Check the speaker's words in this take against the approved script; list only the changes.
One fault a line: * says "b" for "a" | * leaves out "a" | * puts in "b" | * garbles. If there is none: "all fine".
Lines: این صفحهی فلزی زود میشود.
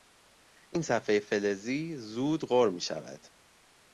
* puts in "غر"